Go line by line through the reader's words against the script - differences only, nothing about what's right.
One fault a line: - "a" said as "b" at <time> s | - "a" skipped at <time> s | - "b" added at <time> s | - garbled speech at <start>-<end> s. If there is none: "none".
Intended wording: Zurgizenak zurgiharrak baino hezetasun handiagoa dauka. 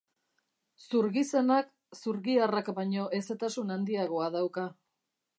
none